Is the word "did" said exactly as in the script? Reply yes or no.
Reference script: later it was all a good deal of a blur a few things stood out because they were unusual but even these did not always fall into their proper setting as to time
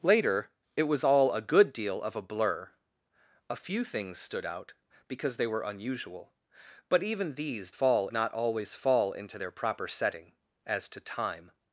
no